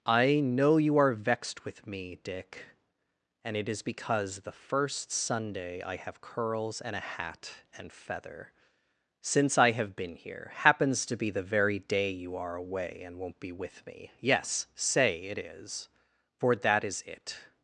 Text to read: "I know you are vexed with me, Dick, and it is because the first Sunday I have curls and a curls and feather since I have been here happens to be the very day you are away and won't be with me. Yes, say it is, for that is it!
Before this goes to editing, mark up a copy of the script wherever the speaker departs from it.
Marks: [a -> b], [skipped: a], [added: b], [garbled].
"I know you are vexed with me, Dick, and it is because the first Sunday I have curls and a [curls -> hat] and feather since I have been here happens to be the very day you are away and won't be with me. Yes, say it is, for that is it!